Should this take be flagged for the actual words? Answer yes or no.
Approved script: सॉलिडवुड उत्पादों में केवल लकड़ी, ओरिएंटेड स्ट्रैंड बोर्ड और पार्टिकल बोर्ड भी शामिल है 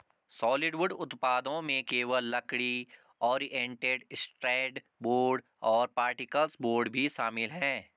no